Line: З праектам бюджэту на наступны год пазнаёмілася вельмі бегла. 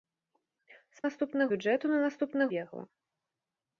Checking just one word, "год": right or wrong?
wrong